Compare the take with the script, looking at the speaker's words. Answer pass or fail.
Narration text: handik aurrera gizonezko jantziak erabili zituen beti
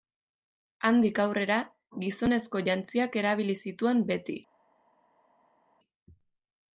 pass